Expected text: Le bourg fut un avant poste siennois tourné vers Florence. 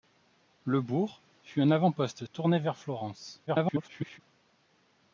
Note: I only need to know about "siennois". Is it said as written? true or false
false